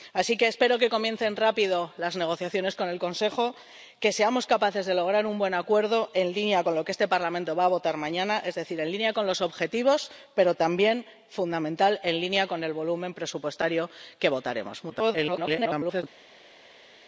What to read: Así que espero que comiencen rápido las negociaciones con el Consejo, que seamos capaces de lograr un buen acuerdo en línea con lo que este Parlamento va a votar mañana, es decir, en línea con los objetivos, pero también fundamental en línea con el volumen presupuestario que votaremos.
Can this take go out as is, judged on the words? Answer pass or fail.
fail